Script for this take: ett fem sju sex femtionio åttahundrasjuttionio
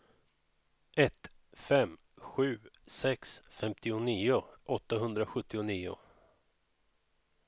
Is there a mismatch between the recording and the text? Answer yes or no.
no